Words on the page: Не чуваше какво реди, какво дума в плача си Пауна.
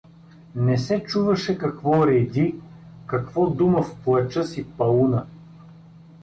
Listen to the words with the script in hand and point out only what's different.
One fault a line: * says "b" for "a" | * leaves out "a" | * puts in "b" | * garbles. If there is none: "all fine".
* puts in "се"